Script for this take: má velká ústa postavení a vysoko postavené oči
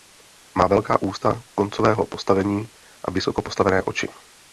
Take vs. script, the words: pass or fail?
fail